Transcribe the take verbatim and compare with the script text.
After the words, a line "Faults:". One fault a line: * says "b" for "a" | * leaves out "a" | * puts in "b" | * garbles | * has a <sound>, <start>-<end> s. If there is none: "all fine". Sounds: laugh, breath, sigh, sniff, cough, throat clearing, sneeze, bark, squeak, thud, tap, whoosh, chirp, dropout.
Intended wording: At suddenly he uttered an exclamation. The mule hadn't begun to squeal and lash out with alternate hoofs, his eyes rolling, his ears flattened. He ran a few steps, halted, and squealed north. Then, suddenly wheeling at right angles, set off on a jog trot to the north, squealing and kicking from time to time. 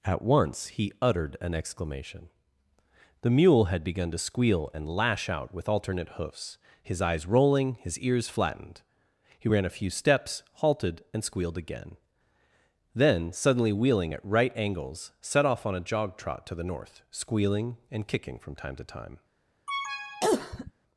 At once he uttered an exclamation. The mule had begun to squeal and lash out with alternate hoofs, his eyes rolling, his ears flattened. He ran a few steps, halted, and squealed again. Then, suddenly wheeling at right angles, set off on a jog trot to the north, squealing and kicking from time to time.
Faults:
* says "once" for "suddenly"
* says "had" for "hadn't"
* says "again" for "north"
* has a cough, 19.7-20.7 s